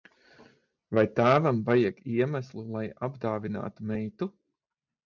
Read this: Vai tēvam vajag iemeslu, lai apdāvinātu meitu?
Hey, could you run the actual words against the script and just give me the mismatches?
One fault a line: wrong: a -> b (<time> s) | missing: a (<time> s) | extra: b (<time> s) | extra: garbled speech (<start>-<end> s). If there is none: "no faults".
no faults